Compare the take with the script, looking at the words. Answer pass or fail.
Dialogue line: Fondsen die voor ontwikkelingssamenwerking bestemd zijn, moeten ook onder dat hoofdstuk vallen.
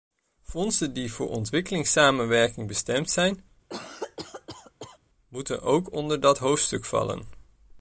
pass